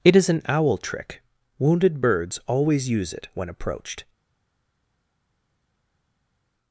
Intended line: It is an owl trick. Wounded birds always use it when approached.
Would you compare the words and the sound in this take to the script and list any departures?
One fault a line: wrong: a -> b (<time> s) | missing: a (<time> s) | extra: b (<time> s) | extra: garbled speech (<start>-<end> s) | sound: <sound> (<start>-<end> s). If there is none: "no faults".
no faults